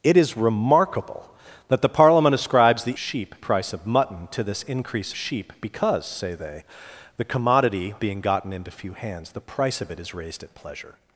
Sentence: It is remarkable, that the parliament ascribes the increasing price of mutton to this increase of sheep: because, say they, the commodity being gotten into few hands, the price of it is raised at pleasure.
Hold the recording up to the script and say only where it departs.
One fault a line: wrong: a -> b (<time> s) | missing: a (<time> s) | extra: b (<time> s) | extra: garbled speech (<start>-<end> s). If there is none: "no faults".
wrong: increasing -> sheep (3.0 s)
missing: of (5.1 s)